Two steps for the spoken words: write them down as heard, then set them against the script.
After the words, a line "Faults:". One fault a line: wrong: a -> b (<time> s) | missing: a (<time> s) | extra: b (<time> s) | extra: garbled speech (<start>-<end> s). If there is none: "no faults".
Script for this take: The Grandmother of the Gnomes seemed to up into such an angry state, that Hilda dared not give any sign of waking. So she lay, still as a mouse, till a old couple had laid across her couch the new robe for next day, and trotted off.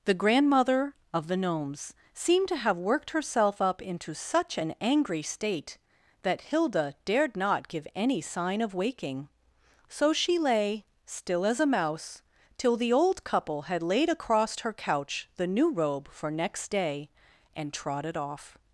The Grandmother of the Gnomes seemed to have worked herself up into such an angry state, that Hilda dared not give any sign of waking. So she lay, still as a mouse, till the old couple had laid across her couch the new robe for next day, and trotted off.
Faults:
extra: have worked herself (2.5 s)
wrong: a -> the (12.8 s)